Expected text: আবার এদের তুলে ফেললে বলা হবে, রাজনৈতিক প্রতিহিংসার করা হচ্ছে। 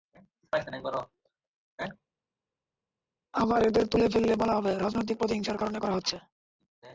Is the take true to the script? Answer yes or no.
no